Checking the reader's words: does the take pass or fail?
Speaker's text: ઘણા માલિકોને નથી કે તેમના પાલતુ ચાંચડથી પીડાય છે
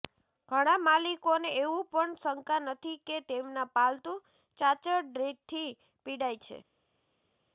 fail